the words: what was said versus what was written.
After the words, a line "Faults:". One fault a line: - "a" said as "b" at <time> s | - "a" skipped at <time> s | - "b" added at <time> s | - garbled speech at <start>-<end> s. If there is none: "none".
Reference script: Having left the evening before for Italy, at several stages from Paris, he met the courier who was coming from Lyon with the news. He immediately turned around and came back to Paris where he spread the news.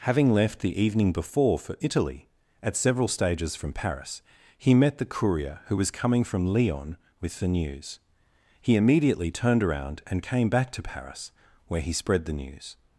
Having left the evening before for Italy, at several stages from Paris, he met the courier who was coming from Lyon with the news. He immediately turned around and came back to Paris where he spread the news.
Faults:
none